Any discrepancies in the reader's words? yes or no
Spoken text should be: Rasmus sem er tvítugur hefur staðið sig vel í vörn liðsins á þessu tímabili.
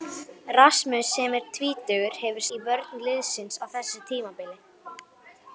yes